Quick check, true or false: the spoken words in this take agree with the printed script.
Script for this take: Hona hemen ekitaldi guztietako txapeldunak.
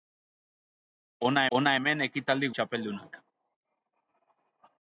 false